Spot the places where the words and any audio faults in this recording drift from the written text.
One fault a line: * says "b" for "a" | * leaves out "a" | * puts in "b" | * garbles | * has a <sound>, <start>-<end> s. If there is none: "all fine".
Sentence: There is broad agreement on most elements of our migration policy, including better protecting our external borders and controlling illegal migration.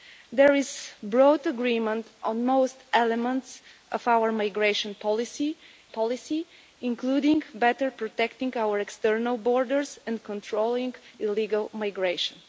* puts in "policy"